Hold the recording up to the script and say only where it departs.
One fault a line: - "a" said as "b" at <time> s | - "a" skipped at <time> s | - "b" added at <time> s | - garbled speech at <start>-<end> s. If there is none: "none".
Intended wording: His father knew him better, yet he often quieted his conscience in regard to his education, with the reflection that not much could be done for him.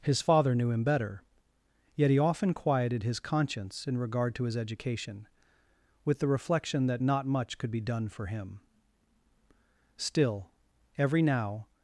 - "Still every now" added at 10.0 s